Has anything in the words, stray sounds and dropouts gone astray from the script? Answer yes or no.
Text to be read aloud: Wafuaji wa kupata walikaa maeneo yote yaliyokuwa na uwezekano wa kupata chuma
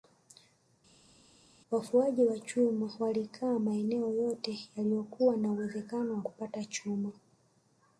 yes